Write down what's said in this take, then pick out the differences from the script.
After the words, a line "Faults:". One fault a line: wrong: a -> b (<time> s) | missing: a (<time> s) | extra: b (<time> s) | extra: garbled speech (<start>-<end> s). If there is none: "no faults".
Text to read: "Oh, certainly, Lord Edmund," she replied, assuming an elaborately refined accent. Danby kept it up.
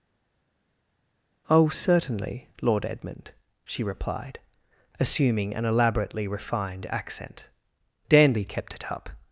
"Oh, certainly, Lord Edmund," she replied, assuming an elaborately refined accent. Danby kept it up.
Faults:
no faults